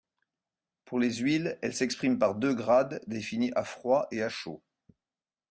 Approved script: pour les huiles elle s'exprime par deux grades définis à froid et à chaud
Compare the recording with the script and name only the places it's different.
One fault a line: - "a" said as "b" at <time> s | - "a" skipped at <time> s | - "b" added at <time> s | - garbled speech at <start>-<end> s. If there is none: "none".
none